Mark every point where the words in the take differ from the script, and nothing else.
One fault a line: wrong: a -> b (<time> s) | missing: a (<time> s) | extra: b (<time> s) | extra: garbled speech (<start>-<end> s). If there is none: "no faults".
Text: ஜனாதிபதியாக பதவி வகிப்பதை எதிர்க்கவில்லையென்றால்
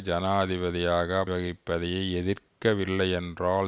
missing: பதவி (1.2 s)